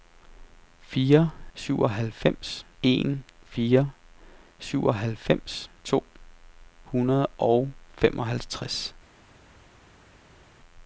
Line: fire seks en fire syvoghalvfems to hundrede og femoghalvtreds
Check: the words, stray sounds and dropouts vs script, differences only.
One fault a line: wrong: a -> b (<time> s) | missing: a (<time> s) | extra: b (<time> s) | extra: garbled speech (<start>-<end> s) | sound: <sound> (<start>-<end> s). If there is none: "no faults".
wrong: seks -> syvoghalvfems (1.5 s)